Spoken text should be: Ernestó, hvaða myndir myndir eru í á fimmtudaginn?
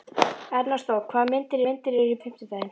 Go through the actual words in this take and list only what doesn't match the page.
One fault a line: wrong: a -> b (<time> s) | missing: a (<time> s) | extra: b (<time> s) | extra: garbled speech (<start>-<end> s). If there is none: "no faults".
no faults